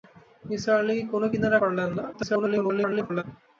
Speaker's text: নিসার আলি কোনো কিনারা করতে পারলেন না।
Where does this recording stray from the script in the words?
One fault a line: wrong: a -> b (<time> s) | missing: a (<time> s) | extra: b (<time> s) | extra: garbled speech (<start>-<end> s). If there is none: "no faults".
missing: করতে (1.6 s)
extra: garbled speech (2.1-3.2 s)